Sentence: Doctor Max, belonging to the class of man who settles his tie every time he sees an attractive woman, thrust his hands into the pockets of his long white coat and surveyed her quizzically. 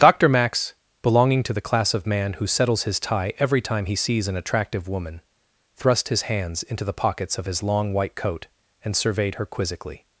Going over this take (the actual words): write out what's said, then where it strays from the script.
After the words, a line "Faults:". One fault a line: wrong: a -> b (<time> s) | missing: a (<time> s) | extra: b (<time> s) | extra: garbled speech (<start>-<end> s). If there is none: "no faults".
Doctor Max, belonging to the class of man who settles his tie every time he sees an attractive woman, thrust his hands into the pockets of his long white coat and surveyed her quizzically.
Faults:
no faults